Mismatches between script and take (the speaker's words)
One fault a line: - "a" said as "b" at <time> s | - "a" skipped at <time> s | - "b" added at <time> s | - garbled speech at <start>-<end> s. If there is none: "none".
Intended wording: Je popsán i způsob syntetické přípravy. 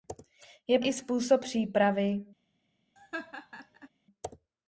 - "popsán" skipped at 0.8 s
- "syntetické" skipped at 1.4 s